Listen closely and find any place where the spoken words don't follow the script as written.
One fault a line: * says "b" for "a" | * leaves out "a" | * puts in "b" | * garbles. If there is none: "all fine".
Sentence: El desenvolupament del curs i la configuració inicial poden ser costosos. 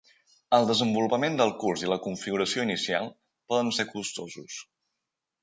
all fine